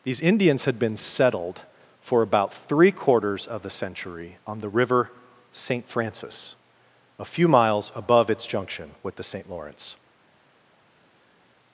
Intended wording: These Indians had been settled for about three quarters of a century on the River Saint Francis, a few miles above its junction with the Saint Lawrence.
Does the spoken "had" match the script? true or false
true